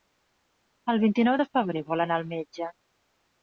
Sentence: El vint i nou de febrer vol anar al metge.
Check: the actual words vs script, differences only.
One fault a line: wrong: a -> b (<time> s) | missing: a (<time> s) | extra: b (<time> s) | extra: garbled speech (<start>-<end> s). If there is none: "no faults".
no faults